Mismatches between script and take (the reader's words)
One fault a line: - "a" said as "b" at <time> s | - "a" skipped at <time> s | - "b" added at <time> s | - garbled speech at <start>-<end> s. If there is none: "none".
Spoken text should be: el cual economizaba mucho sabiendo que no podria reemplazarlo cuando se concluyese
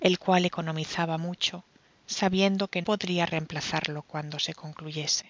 - "no" skipped at 2.8 s